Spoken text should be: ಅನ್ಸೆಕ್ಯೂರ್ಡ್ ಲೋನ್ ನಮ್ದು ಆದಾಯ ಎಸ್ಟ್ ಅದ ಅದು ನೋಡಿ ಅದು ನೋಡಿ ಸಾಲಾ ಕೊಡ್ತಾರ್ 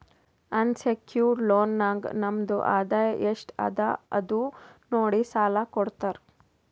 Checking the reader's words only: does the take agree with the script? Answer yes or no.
no